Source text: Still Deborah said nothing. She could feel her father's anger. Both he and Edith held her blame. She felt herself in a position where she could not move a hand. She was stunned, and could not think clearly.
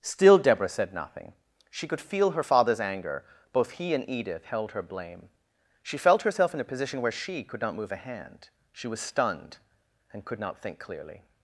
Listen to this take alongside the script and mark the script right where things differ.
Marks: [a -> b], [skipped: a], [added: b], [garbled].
Still Deborah said nothing. She could feel her father's anger. Both he and Edith held her blame. She felt herself in a position where she could not move a hand. She was stunned, and could not think clearly.